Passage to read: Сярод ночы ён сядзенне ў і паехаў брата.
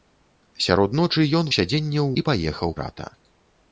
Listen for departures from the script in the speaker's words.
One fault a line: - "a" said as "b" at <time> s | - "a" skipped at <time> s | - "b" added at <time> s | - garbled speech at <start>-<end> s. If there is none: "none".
none